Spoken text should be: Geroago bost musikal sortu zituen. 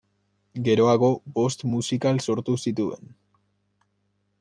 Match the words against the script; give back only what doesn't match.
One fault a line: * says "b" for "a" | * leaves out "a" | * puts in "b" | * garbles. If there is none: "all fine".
all fine